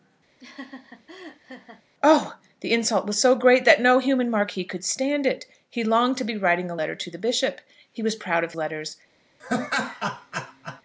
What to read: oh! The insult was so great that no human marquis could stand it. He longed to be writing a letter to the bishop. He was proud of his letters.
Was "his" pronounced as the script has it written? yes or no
no